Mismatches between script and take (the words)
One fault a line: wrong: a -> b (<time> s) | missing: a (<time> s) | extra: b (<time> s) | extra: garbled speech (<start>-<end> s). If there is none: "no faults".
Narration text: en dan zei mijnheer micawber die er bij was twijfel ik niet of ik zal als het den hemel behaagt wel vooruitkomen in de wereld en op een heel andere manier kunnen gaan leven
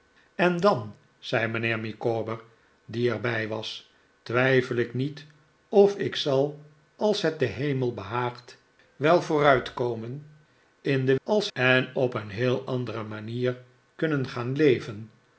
wrong: wereld -> als (11.2 s)